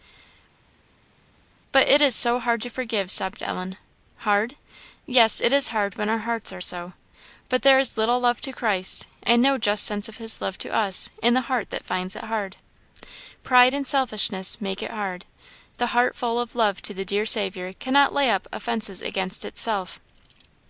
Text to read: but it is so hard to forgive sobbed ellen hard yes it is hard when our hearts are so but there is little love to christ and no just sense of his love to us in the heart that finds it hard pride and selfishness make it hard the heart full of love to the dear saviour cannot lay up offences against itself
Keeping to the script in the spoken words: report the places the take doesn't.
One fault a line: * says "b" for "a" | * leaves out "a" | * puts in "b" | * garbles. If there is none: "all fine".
all fine